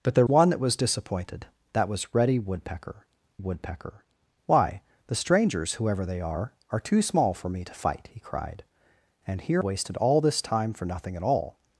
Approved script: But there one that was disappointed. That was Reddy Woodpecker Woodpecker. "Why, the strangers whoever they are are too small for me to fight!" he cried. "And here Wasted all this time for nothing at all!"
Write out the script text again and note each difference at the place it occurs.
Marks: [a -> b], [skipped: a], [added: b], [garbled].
But there one that was disappointed. That was Reddy Woodpecker Woodpecker. "Why, the strangers whoever they are are too small for me to fight!" he cried. "And here Wasted all this time for nothing at all!"